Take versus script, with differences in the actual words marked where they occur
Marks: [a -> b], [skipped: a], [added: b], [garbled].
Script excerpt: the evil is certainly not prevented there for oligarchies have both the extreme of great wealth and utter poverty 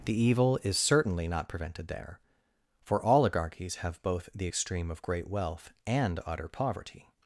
the evil is certainly not prevented there for oligarchies have both the extreme of great wealth and utter poverty